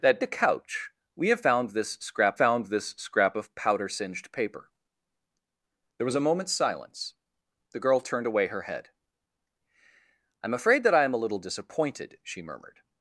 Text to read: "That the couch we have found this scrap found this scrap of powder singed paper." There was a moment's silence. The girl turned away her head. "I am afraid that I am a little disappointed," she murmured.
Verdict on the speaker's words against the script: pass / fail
pass